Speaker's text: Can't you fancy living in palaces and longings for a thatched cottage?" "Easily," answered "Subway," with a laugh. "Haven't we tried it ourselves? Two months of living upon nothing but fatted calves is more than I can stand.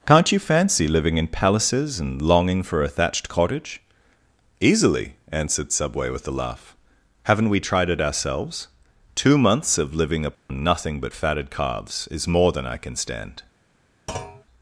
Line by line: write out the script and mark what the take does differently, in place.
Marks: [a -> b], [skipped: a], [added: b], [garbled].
Can't you fancy living in palaces and [longings -> longing] for a thatched cottage?" "Easily," answered "Subway," with a laugh. "Haven't we tried it ourselves? Two months of living upon nothing but fatted calves is more than I can stand.